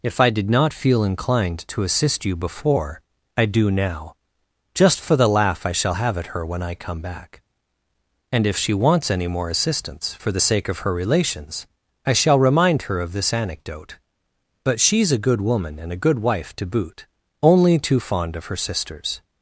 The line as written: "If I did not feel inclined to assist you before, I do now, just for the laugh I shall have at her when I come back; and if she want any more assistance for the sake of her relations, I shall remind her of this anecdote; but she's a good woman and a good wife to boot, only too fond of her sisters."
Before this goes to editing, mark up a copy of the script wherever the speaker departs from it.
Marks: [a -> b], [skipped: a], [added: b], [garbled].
"If I did not feel inclined to assist you before, I do now, just for the laugh I shall have at her when I come back; and if she [want -> wants] any more assistance for the sake of her relations, I shall remind her of this anecdote; but she's a good woman and a good wife to boot, only too fond of her sisters."